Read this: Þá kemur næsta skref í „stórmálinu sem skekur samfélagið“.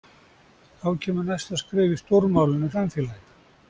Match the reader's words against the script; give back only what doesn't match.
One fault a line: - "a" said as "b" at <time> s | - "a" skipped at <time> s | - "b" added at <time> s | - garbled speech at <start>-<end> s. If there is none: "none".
- "sem skekur" skipped at 2.7 s